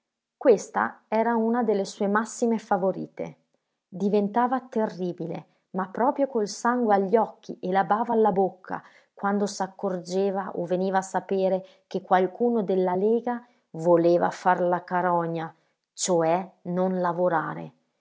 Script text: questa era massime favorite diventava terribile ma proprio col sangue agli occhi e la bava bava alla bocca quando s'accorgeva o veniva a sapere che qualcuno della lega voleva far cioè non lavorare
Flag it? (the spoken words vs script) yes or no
yes